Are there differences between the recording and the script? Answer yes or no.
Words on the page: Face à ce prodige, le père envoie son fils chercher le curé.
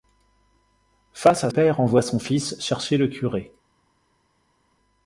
yes